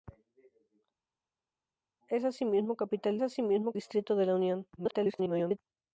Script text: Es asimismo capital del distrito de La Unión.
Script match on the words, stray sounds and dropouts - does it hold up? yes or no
no